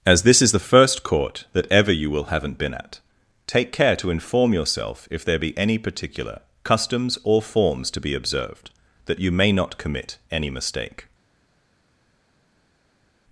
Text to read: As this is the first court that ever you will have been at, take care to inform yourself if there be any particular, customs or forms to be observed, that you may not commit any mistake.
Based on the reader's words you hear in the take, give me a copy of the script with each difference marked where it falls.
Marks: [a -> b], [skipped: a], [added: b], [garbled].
As this is the first court that ever you will [have -> haven't] been at, take care to inform yourself if there be any particular, customs or forms to be observed, that you may not commit any mistake.